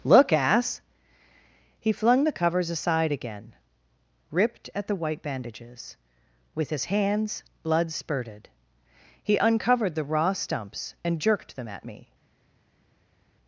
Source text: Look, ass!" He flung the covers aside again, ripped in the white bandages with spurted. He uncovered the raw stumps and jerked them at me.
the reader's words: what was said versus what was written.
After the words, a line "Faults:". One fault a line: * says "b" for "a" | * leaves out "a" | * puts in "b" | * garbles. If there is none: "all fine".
Look, ass!" He flung the covers aside again, ripped at the white bandages with his hands Blood spurted. He uncovered the raw stumps and jerked them at me.
Faults:
* says "at" for "in"
* puts in "his hands Blood"